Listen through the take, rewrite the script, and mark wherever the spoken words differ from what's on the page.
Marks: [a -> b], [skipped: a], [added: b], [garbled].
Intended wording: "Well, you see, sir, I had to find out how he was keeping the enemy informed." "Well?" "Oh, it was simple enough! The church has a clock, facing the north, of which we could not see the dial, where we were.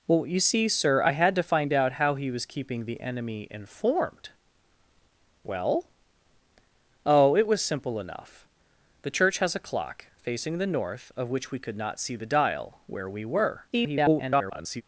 "Well, you see, sir, I had to find out how he was keeping the enemy informed." "Well?" "Oh, it was simple enough! The church has a clock, facing the north, of which we could not see the dial, where we were. [garbled]